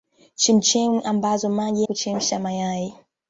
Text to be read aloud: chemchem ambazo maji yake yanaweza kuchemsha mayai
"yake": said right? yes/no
no